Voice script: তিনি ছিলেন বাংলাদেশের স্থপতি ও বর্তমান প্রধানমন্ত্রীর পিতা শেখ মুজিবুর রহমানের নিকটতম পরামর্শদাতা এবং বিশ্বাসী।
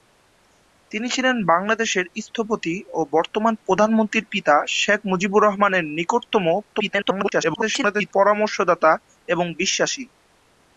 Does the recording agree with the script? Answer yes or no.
no